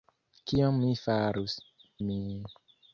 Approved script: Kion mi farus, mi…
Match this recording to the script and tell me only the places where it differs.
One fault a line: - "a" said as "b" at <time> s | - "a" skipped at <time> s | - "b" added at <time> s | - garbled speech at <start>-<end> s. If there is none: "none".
none